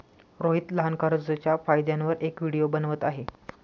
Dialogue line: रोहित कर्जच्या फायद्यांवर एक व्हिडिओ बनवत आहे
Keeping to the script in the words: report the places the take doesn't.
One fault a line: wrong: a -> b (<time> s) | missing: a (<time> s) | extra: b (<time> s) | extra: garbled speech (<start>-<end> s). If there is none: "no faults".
extra: लहान (0.7 s)